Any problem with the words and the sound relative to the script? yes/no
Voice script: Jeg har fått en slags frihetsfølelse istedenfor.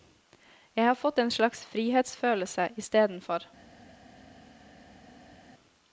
no